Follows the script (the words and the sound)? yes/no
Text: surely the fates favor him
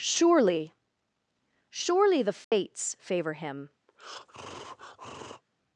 no